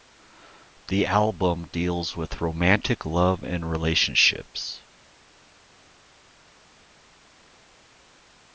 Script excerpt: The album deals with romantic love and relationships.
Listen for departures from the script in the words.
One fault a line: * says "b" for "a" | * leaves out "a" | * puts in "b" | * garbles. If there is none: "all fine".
all fine